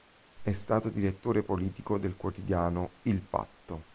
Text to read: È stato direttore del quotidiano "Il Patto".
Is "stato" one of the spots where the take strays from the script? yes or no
no